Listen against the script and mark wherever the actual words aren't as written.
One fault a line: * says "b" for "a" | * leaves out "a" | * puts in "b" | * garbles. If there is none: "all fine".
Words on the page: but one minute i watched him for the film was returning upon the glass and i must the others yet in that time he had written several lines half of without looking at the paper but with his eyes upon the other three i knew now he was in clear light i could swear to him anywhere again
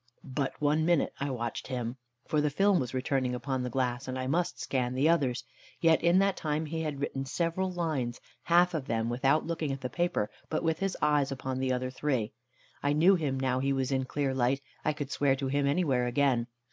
* puts in "scan"
* puts in "them"
* puts in "him"